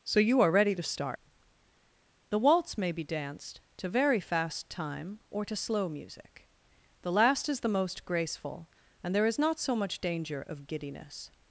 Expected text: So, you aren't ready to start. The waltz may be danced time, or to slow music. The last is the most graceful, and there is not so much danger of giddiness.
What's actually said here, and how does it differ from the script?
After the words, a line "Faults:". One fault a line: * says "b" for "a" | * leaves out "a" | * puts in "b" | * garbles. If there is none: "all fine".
So, you are ready to start. The waltz may be danced to very fast time, or to slow music. The last is the most graceful, and there is not so much danger of giddiness.
Faults:
* says "are" for "aren't"
* puts in "to very fast"